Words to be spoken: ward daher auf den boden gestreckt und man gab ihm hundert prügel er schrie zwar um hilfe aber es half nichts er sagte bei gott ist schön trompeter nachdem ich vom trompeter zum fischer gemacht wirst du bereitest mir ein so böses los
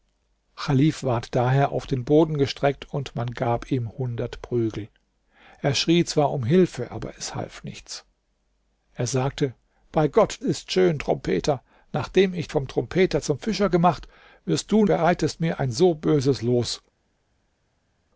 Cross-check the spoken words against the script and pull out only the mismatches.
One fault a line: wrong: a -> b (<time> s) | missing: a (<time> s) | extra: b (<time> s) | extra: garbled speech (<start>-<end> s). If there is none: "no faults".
no faults